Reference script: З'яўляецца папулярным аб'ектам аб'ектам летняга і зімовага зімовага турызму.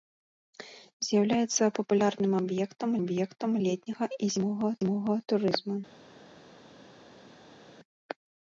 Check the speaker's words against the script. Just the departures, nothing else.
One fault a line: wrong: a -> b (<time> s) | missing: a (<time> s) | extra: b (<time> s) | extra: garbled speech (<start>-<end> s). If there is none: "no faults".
no faults